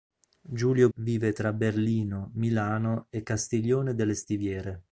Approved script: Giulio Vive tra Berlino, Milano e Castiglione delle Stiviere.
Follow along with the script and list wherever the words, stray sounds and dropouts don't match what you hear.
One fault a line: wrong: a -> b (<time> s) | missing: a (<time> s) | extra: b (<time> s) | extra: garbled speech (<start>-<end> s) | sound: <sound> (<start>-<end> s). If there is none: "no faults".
no faults